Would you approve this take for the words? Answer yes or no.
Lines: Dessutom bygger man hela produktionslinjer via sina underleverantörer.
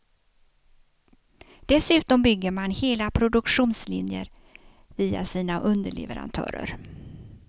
yes